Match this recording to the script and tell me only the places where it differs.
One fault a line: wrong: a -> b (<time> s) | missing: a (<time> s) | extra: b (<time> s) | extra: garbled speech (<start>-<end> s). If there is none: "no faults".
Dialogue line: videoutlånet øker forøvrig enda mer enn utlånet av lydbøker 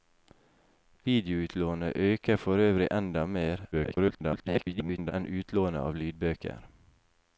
extra: garbled speech (3.7-5.1 s)